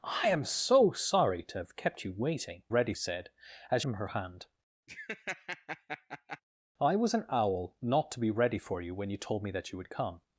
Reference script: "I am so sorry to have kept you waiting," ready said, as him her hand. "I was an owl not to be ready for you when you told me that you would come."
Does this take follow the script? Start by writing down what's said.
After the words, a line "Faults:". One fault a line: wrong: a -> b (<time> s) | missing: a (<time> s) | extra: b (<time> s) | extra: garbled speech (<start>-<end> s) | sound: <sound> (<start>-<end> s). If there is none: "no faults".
"I am so sorry to have kept you waiting," ready said, as him her hand. "I was an owl not to be ready for you when you told me that you would come."
Faults:
sound: laugh (4.9-6.4 s)